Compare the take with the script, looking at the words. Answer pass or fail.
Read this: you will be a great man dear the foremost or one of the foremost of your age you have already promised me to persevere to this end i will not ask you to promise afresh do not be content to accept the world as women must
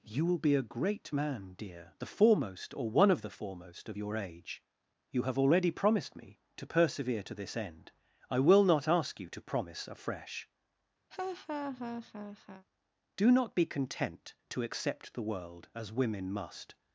pass